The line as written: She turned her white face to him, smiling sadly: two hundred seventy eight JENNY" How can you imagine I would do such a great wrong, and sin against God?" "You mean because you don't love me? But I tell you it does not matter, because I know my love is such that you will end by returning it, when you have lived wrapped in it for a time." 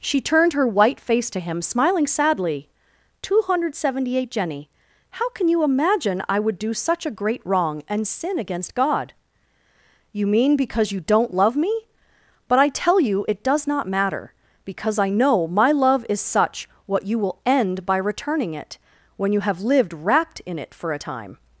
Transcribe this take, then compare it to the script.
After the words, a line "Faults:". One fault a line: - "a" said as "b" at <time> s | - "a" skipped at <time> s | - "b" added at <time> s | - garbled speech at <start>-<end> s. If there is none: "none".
She turned her white face to him, smiling sadly: two hundred seventy eight JENNY" How can you imagine I would do such a great wrong, and sin against God?" "You mean because you don't love me? But I tell you it does not matter, because I know my love is such what you will end by returning it, when you have lived wrapped in it for a time."
Faults:
- "that" said as "what" at 16.8 s